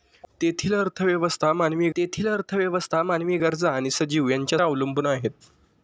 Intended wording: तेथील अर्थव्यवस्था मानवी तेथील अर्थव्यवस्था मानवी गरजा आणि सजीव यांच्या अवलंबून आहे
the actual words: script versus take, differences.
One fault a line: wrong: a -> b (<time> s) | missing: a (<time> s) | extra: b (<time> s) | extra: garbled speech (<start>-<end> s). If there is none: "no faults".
no faults